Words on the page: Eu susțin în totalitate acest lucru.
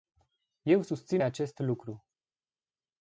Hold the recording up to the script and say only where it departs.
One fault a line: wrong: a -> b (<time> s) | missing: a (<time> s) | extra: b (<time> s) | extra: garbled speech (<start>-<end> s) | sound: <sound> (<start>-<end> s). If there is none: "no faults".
missing: în totalitate (1.2 s)